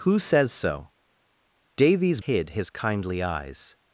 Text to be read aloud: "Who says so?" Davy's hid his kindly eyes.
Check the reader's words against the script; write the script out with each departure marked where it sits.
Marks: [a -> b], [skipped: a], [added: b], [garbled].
"Who says so?" Davy's hid his kindly eyes.